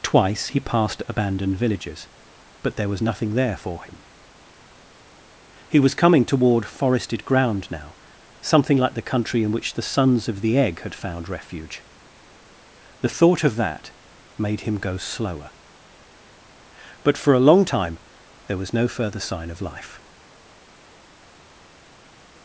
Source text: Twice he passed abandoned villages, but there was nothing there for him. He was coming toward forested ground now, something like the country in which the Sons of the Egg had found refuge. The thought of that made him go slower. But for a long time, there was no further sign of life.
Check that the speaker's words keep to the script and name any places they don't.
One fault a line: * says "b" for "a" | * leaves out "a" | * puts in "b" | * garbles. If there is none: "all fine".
all fine